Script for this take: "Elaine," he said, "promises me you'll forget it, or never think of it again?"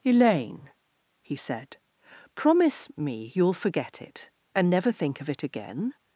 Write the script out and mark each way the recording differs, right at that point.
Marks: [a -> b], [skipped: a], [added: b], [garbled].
"Elaine," he said, ["promises -> promise] me you'll forget it, [or -> and] never think of it again?"